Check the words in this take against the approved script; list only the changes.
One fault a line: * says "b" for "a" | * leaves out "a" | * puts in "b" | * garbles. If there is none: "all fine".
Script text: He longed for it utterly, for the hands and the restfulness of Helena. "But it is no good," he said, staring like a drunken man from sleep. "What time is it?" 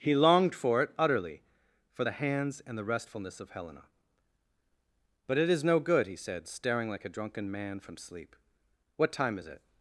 all fine